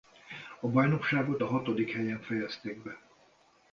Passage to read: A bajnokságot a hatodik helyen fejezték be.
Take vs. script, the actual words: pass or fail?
pass